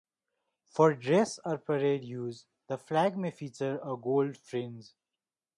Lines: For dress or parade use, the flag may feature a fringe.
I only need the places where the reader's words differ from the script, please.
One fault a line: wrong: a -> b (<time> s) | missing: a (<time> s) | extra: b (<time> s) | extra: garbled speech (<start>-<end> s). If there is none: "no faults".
extra: gold (4.0 s)